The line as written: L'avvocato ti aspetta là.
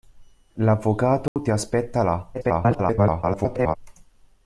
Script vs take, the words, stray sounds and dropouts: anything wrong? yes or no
yes